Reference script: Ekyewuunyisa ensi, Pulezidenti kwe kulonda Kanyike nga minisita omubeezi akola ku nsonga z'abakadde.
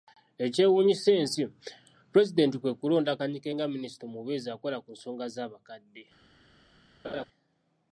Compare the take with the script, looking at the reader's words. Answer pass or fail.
pass